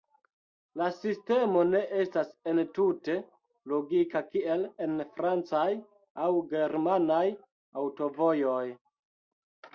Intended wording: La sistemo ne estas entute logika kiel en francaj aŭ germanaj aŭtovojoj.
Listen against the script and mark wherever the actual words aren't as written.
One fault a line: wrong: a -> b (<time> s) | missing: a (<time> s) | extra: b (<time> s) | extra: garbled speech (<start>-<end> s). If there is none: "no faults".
no faults